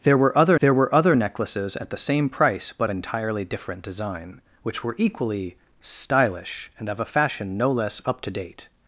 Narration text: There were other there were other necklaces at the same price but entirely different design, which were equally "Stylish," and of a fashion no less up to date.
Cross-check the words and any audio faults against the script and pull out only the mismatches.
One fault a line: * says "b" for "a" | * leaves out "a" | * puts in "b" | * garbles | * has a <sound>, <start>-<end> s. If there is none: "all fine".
all fine